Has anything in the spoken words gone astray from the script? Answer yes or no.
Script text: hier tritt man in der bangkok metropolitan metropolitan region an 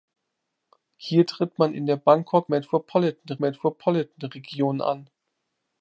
no